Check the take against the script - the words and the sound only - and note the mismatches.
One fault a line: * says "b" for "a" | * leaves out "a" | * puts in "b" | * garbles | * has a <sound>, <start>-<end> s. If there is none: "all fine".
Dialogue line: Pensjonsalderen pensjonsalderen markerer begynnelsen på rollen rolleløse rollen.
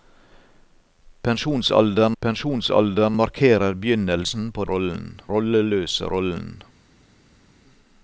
all fine